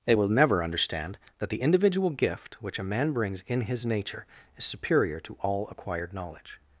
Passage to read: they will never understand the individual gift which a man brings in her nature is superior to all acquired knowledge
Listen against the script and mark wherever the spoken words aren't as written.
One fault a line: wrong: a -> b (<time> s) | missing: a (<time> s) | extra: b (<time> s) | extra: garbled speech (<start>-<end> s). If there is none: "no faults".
extra: that (1.4 s)
wrong: her -> his (3.6 s)